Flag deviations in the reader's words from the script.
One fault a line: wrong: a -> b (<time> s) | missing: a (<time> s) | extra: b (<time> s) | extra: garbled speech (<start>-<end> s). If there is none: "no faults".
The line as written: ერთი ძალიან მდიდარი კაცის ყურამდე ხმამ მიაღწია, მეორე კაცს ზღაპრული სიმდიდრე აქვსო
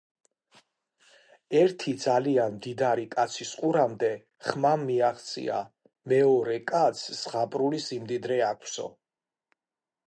no faults